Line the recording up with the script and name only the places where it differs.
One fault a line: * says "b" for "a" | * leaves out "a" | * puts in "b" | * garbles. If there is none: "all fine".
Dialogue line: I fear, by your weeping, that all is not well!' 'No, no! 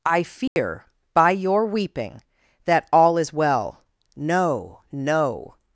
* leaves out "not"